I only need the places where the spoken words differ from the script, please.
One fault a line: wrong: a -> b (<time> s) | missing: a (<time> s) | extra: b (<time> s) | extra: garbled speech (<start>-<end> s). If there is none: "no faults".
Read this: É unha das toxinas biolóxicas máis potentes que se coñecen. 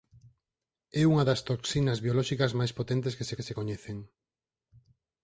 extra: que se (3.4 s)